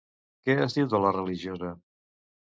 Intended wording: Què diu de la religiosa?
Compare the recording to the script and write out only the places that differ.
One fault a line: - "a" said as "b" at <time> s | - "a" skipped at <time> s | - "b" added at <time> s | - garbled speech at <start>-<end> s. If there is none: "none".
- "es" added at 0.6 s